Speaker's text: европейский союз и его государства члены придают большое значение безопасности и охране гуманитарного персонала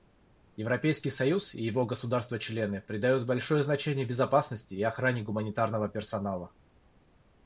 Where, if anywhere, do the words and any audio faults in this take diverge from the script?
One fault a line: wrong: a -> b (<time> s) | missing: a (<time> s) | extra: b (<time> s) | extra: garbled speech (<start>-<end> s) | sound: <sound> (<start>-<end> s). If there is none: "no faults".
no faults